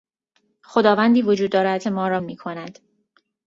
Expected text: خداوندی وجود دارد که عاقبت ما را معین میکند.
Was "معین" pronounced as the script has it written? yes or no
no